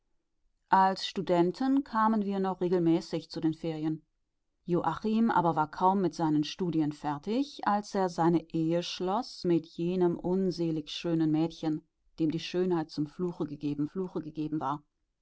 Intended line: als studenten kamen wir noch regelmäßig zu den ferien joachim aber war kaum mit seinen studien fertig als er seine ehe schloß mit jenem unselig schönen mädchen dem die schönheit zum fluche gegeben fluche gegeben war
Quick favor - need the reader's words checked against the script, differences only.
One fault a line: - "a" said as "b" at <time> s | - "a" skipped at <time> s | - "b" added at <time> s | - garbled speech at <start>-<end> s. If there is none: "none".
none